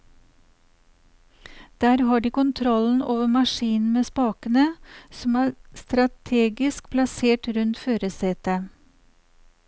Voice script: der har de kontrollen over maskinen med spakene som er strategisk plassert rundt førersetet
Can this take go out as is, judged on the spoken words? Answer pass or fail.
pass